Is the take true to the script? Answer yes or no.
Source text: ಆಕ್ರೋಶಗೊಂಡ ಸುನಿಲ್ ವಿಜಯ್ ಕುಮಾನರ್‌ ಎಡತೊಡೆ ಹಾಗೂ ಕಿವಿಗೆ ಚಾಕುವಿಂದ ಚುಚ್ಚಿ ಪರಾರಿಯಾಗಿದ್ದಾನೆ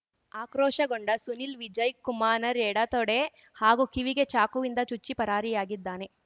yes